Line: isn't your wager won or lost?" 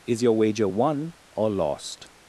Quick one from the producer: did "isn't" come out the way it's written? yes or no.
no